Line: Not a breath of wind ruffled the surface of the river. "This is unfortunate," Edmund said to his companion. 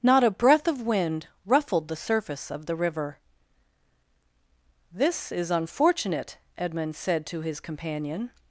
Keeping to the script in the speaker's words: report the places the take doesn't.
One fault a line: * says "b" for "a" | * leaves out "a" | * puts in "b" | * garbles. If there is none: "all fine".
all fine